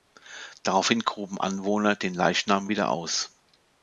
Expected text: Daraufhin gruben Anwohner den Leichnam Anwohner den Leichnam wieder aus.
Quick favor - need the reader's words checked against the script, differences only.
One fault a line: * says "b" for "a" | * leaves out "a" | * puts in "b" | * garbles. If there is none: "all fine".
* leaves out "Anwohner den Leichnam"